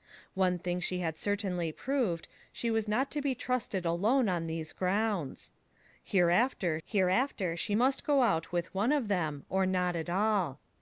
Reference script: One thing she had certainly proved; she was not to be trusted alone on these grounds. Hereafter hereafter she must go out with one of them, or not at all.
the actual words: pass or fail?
pass